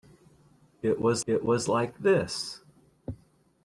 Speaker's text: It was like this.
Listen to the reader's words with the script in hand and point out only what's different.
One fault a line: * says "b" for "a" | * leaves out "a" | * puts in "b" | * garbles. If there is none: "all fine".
* puts in "it was"